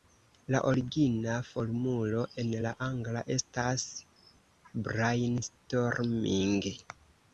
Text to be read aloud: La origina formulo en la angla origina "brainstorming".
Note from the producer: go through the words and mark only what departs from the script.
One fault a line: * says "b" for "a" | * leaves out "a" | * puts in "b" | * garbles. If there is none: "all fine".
* says "estas" for "origina"